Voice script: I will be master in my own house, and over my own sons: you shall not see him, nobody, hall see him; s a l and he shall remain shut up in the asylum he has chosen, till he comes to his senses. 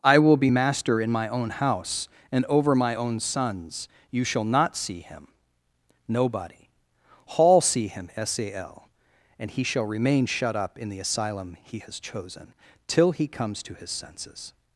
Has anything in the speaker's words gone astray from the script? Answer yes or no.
no